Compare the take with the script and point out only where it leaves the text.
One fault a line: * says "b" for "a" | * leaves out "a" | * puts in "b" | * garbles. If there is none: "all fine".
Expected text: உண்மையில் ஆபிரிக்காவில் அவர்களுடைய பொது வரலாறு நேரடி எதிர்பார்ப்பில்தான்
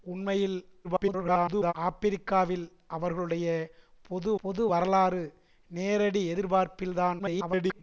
* garbles
* puts in "பொது"
* garbles